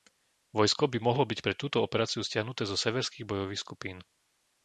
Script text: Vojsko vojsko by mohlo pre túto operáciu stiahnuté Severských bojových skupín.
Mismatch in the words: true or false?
true